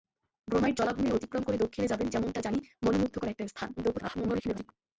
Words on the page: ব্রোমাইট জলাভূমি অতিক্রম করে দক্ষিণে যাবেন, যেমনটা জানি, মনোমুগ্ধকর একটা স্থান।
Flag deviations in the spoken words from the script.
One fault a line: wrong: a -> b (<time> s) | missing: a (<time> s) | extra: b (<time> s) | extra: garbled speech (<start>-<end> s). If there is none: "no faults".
extra: garbled speech (3.8-4.7 s)